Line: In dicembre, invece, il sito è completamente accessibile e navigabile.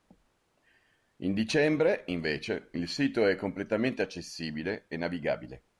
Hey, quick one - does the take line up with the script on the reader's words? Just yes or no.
yes